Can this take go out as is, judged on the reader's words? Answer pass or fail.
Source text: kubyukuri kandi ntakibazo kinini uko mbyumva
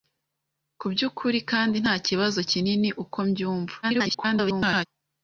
fail